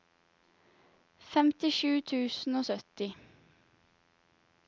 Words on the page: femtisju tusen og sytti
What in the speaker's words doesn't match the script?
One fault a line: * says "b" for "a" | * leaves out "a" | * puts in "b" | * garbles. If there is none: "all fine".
all fine